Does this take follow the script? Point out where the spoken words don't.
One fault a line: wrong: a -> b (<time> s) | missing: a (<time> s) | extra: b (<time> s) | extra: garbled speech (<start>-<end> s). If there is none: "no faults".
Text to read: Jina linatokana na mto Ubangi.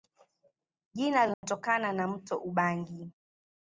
no faults